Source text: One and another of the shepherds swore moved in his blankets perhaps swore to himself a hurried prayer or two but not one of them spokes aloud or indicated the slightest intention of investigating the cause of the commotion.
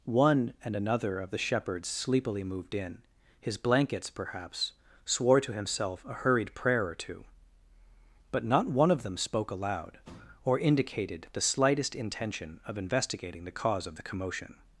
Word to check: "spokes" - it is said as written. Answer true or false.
false